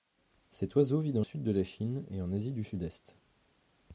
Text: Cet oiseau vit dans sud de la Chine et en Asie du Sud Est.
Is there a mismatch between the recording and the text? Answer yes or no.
no